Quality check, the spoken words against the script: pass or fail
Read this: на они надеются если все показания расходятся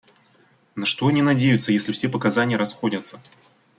fail